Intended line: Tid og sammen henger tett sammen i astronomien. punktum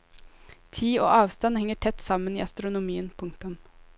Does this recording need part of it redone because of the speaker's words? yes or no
yes